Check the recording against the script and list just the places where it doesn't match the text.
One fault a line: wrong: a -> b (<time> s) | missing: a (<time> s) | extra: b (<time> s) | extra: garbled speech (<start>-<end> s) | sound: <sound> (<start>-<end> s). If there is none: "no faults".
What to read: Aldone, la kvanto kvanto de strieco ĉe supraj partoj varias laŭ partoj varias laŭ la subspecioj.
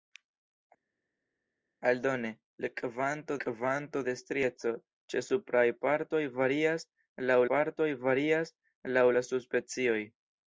no faults